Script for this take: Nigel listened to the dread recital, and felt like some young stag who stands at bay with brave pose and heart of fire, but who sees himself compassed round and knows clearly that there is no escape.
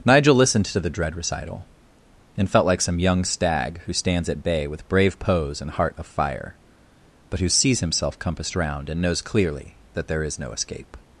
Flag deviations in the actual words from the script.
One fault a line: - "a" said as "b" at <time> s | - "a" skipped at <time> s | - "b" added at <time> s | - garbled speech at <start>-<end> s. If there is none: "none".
none